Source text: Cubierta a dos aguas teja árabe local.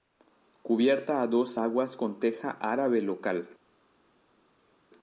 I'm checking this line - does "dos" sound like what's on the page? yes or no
yes